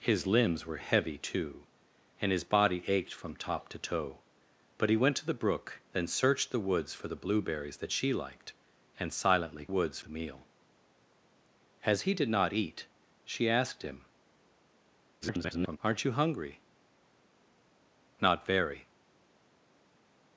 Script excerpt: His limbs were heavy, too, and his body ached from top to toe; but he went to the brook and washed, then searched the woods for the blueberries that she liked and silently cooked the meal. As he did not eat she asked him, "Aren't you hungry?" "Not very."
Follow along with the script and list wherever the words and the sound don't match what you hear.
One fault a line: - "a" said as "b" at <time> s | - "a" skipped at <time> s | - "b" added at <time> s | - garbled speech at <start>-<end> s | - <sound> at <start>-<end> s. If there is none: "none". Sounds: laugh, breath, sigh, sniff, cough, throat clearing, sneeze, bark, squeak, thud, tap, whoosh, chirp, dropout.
- "and washed" skipped at 5.8 s
- "cooked" said as "woods" at 9.7 s
- garbled speech at 15.2-15.8 s